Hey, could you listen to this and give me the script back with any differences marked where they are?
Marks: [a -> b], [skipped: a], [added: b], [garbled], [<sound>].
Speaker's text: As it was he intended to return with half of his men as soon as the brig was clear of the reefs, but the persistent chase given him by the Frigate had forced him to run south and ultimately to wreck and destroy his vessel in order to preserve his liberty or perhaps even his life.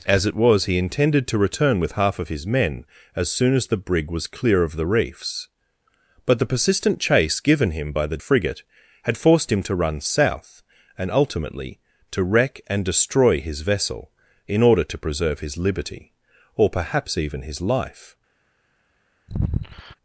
As it was he intended to return with half of his men as soon as the brig was clear of the reefs, but the persistent chase given him by the Frigate had forced him to run south and ultimately to wreck and destroy his vessel in order to preserve his liberty or perhaps even his life. [sigh]